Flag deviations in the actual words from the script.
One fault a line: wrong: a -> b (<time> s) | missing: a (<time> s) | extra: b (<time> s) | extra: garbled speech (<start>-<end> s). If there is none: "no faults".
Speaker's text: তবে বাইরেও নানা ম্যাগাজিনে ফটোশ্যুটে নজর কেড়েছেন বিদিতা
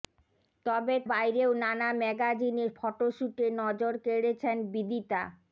no faults